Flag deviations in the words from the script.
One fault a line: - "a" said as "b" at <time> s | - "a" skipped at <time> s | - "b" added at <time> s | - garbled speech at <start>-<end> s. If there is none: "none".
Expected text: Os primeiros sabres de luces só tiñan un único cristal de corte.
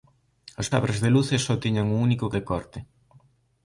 - "primeiros" skipped at 0.7 s
- "cristal" skipped at 2.2 s